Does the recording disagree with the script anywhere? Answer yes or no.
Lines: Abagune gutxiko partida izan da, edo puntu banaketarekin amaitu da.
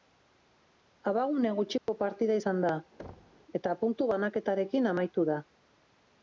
yes